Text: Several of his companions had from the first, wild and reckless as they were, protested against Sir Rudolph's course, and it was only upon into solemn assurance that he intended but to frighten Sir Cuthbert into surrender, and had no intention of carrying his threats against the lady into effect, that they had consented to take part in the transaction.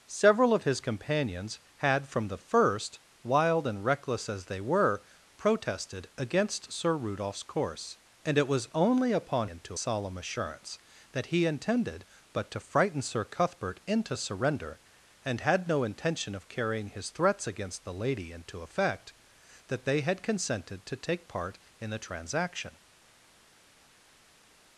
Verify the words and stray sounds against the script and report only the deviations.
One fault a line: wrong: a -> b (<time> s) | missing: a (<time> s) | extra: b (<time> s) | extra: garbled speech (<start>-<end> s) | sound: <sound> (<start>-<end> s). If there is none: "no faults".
no faults